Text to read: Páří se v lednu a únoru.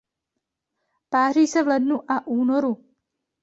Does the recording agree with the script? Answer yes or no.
yes